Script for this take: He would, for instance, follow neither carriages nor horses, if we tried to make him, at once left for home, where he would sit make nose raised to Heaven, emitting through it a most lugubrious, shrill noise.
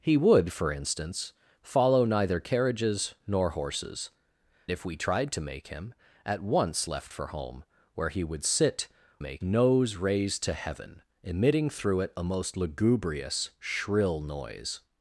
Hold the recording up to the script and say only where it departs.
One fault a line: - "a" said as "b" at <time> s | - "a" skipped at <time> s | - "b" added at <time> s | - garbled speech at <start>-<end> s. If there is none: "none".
none